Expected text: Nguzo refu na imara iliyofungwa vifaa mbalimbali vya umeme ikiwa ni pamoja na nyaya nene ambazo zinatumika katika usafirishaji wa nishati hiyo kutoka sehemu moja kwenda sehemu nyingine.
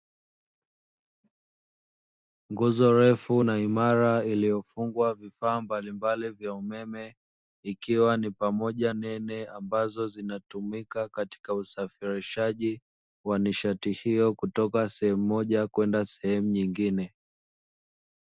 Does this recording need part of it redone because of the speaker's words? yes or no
yes